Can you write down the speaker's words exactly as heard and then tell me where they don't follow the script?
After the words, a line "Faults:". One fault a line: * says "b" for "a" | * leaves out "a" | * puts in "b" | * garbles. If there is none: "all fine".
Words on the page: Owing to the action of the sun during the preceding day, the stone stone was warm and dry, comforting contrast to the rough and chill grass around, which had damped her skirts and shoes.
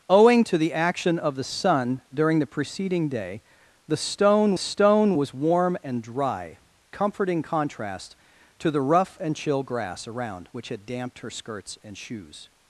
Owing to the action of the sun during the preceding day, the stone stone was warm and dry, comforting contrast to the rough and chill grass around, which had damped her skirts and shoes.
Faults:
all fine